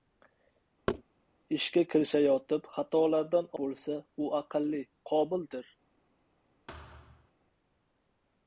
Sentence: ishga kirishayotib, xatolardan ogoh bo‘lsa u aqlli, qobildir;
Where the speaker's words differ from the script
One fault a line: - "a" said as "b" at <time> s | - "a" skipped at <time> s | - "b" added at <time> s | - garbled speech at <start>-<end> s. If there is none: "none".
- "ogoh" skipped at 3.5 s